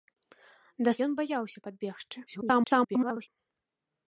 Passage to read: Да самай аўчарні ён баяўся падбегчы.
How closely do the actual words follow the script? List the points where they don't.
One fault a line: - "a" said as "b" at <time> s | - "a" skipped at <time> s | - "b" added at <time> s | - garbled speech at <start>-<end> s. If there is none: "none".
- "самай аўчарні" skipped at 0.9 s
- garbled speech at 2.3-3.3 s